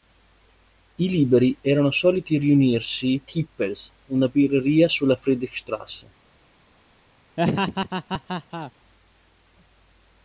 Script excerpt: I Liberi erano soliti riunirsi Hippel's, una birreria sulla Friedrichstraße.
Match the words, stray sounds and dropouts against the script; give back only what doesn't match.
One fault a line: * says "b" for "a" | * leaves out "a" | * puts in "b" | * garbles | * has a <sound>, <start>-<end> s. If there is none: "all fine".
* has a laugh, 7.4-8.7 s